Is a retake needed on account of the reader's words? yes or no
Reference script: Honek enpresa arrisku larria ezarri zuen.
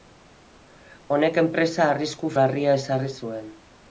no